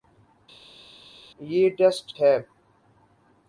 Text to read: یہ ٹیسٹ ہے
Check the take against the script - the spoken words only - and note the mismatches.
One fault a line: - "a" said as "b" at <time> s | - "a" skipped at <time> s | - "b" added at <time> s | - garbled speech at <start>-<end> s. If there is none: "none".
none